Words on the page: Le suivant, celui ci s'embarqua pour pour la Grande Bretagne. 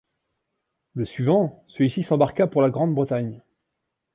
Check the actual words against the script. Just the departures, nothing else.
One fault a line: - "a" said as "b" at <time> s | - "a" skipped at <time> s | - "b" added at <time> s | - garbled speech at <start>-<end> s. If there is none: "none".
- "pour" skipped at 2.6 s